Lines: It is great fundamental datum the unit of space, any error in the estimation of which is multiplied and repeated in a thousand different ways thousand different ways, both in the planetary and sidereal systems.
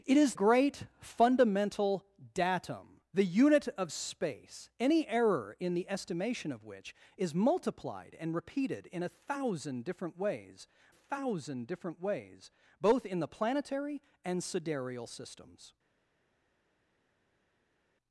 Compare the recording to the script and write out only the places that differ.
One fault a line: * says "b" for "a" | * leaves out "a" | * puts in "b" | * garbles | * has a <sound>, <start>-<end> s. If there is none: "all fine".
all fine